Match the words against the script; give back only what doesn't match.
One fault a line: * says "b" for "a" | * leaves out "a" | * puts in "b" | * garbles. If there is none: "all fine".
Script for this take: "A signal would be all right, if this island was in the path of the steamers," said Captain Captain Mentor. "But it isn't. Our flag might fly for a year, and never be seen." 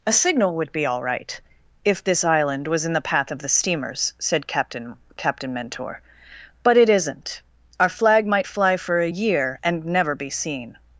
all fine